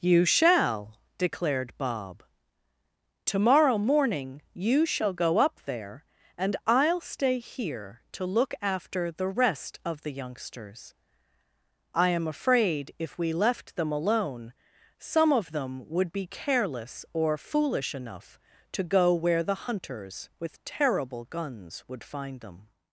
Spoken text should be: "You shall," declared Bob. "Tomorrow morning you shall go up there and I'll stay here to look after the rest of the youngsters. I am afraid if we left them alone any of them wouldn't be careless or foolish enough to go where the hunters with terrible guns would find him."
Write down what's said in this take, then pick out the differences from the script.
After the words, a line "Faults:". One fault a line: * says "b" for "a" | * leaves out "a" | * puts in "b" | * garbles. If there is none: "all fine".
"You shall," declared Bob. "Tomorrow morning you shall go up there and I'll stay here to look after the rest of the youngsters. I am afraid if we left them alone some of them would be careless or foolish enough to go where the hunters with terrible guns would find them."
Faults:
* says "some" for "any"
* says "would" for "wouldn't"
* says "them" for "him"